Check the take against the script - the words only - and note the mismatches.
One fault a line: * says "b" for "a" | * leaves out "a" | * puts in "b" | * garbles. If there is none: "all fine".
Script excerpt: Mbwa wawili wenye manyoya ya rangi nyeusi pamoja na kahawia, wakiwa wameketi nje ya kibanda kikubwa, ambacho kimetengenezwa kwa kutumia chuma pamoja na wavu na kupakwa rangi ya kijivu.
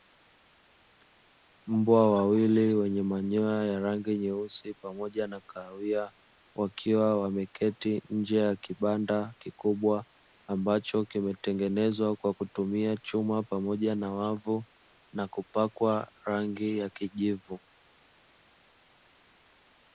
all fine